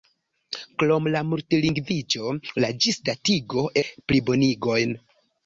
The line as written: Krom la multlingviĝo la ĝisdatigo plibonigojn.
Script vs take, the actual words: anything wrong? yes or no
no